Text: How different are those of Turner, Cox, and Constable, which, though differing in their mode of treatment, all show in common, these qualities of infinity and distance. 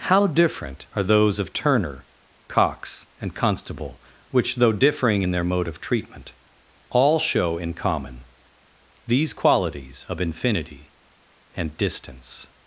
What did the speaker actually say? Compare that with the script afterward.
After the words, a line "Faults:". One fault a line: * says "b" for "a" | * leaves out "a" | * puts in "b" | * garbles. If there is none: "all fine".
How different are those of Turner, Cox, and Constable, which, though differing in their mode of treatment, all show in common, these qualities of infinity and distance.
Faults:
all fine